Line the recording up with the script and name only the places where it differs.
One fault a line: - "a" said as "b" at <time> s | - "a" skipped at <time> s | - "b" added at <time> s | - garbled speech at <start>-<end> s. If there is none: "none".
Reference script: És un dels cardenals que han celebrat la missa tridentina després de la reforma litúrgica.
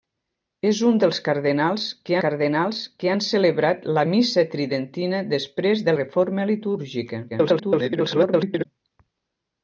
- "cardenals que" added at 2.2 s
- "la" skipped at 6.0 s
- garbled speech at 7.3-8.7 s